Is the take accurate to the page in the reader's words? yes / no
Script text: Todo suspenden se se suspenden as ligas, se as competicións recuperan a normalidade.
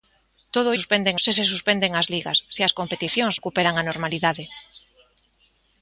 yes